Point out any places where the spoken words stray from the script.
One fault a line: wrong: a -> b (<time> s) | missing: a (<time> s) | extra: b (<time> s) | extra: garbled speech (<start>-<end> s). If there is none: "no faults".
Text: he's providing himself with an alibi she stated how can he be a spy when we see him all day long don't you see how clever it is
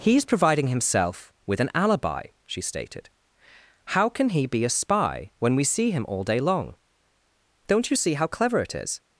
no faults